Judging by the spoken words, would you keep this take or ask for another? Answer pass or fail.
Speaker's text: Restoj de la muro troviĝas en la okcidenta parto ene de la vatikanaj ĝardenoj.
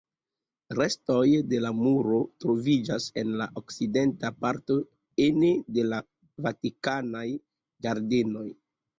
pass